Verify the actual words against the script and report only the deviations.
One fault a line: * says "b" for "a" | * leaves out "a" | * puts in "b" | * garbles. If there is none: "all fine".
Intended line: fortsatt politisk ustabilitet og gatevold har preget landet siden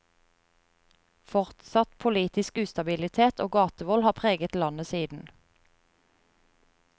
all fine